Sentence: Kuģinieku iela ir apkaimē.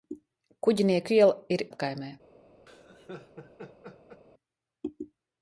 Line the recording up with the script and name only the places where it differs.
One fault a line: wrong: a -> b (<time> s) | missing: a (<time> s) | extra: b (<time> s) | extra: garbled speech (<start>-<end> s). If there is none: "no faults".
no faults